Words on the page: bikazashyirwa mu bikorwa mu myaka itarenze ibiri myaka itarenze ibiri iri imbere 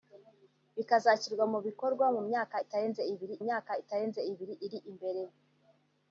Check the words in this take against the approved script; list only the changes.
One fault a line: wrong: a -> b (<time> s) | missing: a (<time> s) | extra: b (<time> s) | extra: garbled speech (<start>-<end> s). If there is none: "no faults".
no faults